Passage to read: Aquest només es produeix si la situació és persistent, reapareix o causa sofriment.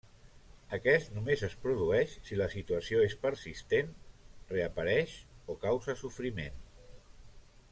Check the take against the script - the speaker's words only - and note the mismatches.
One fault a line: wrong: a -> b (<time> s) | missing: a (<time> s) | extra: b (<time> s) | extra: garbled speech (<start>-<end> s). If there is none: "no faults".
no faults